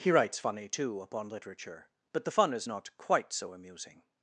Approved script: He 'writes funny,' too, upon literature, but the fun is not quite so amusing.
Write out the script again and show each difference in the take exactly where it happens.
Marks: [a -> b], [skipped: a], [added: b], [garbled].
He 'writes funny,' too, upon literature, but the fun is not quite so amusing.